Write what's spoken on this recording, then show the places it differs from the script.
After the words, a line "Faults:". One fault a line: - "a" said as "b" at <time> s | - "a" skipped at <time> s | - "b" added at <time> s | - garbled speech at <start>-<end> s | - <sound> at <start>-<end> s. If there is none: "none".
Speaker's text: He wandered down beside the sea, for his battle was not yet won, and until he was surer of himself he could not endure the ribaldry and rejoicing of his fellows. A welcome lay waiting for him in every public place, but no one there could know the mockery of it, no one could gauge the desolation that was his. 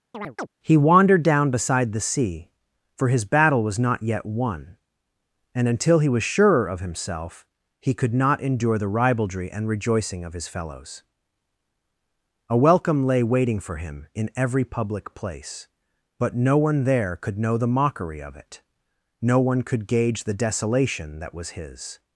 He wandered down beside the sea, for his battle was not yet won, and until he was surer of himself he could not endure the ribaldry and rejoicing of his fellows. A welcome lay waiting for him in every public place, but no one there could know the mockery of it, no one could gauge the desolation that was his.
Faults:
- chirp at 0.1-0.5 s